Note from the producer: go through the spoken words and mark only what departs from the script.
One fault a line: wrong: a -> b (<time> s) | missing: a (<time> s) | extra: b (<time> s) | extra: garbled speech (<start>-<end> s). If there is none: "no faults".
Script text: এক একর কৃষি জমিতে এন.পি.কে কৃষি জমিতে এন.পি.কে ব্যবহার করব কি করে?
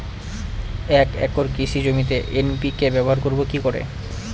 missing: কৃষি জমিতে এন.পি.কে (2.9 s)